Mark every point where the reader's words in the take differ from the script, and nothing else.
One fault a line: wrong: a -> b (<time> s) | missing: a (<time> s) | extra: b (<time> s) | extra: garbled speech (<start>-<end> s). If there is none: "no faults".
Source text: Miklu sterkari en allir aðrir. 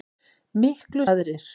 missing: sterkari en allir (1.1 s)